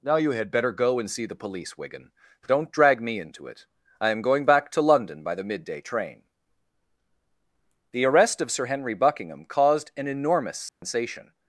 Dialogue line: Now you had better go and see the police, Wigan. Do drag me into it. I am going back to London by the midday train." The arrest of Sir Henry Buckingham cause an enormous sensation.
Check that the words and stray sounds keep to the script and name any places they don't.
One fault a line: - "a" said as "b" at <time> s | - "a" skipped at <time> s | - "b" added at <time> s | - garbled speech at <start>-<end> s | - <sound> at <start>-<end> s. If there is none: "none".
- "Do" said as "Don't" at 2.5 s
- "cause" said as "caused" at 9.4 s
- dropout at 10.7-10.8 s